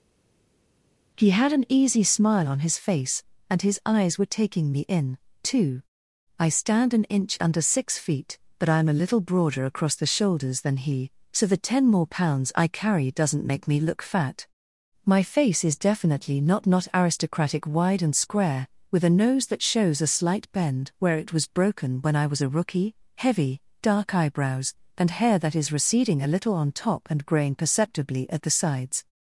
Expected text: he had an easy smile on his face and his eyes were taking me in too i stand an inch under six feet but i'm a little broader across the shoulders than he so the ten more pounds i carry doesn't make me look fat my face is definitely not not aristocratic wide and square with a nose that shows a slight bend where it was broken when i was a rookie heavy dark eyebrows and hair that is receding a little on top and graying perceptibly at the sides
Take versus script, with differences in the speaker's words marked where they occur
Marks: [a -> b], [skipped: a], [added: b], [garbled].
he had an easy smile on his face and his eyes were taking me in too i stand an inch under six feet but i'm a little broader across the shoulders than he so the ten more pounds i carry doesn't make me look fat my face is definitely not not aristocratic wide and square with a nose that shows a slight bend where it was broken when i was a rookie heavy dark eyebrows and hair that is receding a little on top and graying perceptibly at the sides